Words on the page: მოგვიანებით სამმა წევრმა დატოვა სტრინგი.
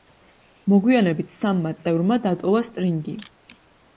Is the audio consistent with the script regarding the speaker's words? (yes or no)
yes